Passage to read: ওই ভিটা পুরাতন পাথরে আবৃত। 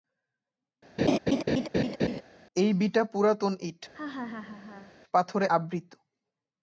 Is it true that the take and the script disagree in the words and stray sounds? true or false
true